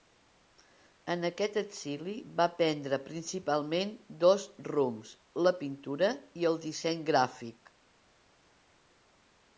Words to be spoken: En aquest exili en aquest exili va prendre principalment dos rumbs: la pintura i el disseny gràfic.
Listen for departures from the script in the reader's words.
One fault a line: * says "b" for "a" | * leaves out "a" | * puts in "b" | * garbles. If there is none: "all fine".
* leaves out "en aquest exili"